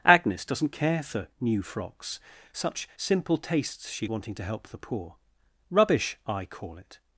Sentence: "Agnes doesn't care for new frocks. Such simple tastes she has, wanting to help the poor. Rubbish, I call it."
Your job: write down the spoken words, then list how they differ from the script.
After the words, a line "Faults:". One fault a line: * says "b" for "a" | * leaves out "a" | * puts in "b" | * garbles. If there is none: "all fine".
"Agnes doesn't care for new frocks. Such simple tastes she wanting to help the poor. Rubbish, I call it."
Faults:
* leaves out "has"